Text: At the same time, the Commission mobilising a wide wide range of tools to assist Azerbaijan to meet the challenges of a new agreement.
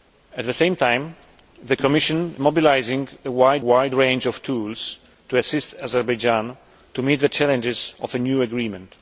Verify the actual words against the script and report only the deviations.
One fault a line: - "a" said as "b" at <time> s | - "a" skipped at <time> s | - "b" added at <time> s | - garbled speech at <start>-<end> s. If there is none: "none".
none